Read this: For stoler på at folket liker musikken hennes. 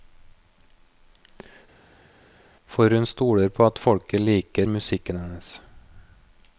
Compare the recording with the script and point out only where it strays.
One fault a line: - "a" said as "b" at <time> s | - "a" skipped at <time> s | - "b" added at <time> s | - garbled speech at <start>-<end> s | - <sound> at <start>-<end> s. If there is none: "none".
- "hun" added at 3.0 s